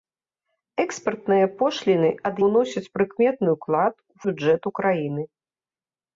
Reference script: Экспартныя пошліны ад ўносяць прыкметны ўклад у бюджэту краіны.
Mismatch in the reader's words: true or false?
false